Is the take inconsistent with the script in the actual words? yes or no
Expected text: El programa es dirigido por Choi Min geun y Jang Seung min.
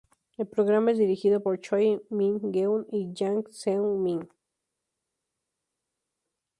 no